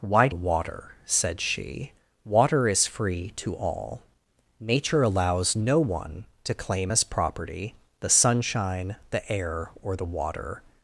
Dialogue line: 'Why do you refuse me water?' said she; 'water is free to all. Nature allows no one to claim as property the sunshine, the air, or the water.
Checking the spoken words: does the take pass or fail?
fail